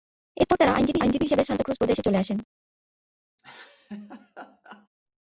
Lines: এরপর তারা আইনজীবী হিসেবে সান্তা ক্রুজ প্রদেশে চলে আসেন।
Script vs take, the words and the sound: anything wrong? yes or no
yes